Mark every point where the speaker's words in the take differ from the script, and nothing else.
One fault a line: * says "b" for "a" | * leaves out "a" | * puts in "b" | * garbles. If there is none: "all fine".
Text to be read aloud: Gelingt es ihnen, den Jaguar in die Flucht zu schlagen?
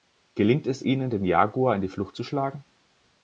all fine